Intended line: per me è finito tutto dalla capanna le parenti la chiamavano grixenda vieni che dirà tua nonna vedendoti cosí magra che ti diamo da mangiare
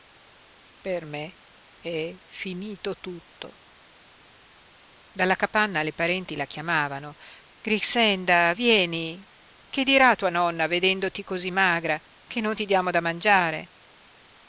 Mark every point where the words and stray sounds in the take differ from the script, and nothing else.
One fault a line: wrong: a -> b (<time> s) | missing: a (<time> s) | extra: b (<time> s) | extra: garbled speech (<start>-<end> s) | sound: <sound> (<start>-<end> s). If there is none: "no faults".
extra: non (12.4 s)